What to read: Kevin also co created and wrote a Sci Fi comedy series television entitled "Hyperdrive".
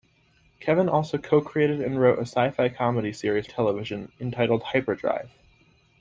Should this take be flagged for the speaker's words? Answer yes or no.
no